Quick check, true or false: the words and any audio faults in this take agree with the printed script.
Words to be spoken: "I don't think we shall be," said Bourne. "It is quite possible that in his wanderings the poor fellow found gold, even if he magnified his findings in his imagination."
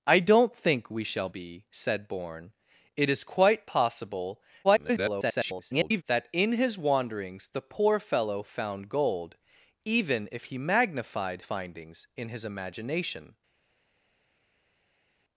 false